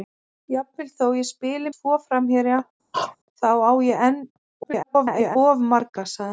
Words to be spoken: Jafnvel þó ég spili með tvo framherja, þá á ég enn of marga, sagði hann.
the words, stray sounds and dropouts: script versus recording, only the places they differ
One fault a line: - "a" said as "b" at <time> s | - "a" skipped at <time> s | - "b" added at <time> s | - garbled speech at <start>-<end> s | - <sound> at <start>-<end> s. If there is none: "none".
- "með" skipped at 1.7 s
- throat clearing at 2.9-3.2 s
- garbled speech at 4.6-5.4 s